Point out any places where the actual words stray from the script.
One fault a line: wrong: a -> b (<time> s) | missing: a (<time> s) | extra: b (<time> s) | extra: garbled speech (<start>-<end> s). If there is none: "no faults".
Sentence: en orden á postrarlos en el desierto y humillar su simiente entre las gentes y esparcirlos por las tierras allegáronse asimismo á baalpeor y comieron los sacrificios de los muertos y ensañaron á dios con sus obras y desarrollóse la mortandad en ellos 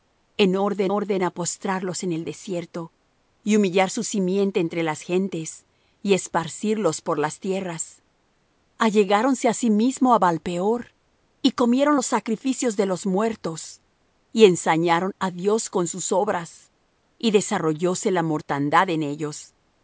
extra: orden (1.0 s)